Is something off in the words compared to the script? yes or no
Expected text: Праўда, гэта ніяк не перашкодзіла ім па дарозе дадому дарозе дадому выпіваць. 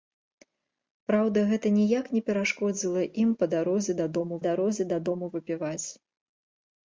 no